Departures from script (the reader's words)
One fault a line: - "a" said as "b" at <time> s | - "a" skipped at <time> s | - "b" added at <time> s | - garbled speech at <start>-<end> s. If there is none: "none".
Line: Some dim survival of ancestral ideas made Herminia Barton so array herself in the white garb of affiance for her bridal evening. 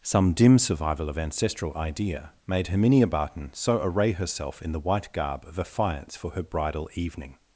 - "ideas" said as "idea" at 1.8 s